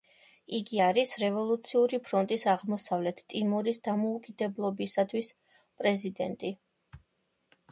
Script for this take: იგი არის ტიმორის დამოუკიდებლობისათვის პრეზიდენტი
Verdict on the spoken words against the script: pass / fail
fail